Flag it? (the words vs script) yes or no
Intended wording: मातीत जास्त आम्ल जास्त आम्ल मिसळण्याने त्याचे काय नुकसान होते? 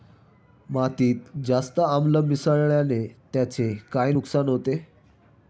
yes